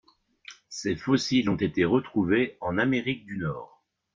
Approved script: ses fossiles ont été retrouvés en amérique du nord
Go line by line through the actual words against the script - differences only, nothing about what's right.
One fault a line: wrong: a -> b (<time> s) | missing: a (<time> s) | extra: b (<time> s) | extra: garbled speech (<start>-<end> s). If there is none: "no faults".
no faults